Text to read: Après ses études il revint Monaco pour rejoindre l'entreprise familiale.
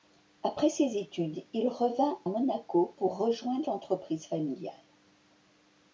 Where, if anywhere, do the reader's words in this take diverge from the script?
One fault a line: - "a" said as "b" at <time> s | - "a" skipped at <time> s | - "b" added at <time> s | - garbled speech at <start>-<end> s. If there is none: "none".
none